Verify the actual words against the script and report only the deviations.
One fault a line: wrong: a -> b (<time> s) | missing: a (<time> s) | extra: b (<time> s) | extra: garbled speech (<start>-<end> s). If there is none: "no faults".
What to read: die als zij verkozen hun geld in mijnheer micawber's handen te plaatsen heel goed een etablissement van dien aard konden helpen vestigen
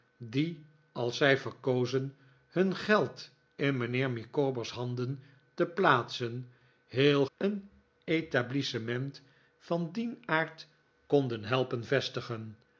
missing: goed (7.2 s)